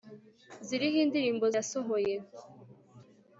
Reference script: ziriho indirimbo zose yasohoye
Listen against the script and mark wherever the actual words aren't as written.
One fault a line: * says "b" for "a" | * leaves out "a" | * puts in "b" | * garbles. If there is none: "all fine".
* leaves out "zose"